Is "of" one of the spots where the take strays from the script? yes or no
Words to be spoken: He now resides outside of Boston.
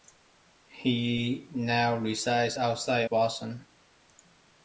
yes